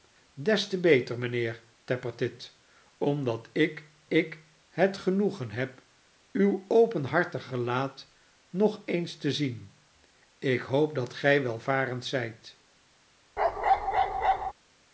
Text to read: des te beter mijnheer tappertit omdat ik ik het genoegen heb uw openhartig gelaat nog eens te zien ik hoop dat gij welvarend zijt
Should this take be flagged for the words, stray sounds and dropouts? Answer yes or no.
yes